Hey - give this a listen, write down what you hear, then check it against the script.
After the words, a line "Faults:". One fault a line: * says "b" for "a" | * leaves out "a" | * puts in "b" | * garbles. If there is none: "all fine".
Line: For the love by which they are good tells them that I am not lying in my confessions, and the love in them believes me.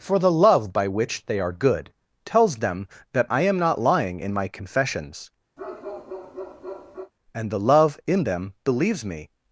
For the love by which they are good tells them that I am not lying in my confessions, and the love in them believes me.
Faults:
all fine